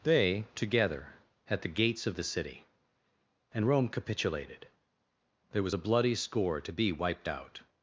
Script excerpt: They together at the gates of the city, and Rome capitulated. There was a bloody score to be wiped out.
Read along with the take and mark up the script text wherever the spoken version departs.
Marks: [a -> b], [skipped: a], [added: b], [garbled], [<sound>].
They together at the gates of the city, and Rome capitulated. There was a bloody score to be wiped out.